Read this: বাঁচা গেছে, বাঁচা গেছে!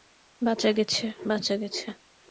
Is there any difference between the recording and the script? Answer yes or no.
no